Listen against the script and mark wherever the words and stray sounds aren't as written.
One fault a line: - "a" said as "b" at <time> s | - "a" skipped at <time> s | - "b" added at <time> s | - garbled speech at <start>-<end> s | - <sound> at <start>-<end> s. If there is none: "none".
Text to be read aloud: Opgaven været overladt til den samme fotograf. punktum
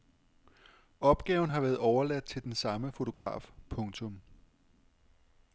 - "har" added at 1.5 s
- dropout at 3.1-3.3 s